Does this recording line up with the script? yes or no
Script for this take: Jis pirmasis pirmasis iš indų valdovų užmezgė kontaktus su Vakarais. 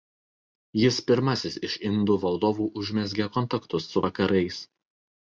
no